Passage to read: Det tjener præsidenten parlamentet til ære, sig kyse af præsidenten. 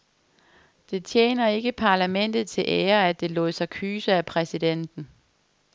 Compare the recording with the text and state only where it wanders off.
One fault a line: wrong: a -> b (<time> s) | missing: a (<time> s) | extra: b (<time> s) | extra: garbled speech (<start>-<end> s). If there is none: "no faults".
wrong: præsidenten -> ikke (1.5 s)
extra: at det lod (3.1 s)